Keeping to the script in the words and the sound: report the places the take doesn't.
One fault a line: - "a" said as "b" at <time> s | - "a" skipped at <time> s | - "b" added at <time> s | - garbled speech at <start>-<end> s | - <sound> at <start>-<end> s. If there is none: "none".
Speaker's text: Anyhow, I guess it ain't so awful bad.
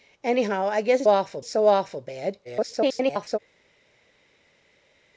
- "ain't" said as "awful" at 1.1 s
- garbled speech at 2.4-3.4 s